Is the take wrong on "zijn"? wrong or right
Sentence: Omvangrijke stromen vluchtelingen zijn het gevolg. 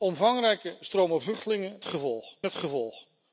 wrong